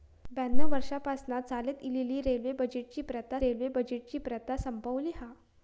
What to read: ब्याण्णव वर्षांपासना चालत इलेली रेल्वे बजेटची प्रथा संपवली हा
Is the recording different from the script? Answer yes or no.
yes